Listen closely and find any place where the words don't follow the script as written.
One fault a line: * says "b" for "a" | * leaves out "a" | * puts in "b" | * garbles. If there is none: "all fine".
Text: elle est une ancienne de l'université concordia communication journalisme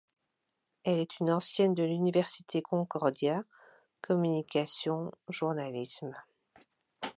all fine